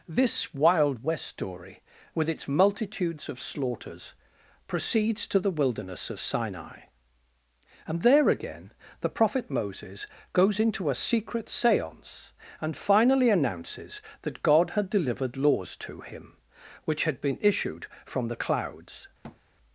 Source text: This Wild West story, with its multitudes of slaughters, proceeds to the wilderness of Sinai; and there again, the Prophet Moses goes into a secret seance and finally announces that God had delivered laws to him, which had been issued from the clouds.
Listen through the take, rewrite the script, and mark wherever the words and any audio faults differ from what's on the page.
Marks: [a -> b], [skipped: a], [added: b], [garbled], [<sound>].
This Wild West story, with its multitudes of slaughters, proceeds to the wilderness of Sinai; and there again, the Prophet Moses goes into a secret seance and finally announces that God had delivered laws to him, which had been issued from the clouds. [thud]